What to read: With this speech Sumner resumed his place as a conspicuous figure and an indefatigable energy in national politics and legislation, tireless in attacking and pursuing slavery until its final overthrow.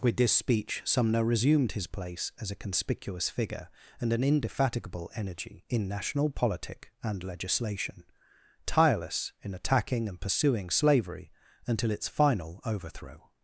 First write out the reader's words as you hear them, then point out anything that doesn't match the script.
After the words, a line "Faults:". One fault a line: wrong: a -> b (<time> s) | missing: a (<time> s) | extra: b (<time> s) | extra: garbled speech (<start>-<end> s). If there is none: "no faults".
With this speech Sumner resumed his place as a conspicuous figure and an indefatigable energy in national politic and legislation, tireless in attacking and pursuing slavery until its final overthrow.
Faults:
wrong: politics -> politic (6.3 s)